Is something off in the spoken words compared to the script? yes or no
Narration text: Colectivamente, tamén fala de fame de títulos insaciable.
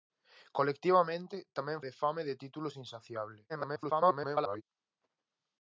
yes